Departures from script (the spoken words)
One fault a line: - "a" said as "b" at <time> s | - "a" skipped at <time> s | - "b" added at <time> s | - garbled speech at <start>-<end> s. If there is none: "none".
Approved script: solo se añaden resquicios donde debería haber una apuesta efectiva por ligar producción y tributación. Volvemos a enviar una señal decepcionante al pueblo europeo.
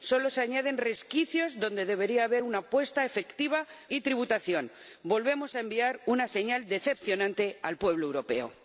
- "por ligar producción" skipped at 3.7 s